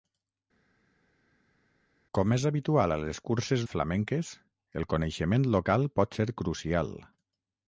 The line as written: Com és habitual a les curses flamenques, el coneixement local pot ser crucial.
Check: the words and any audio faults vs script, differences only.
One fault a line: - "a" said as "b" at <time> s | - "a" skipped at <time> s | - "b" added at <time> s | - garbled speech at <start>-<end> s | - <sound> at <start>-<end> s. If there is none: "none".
none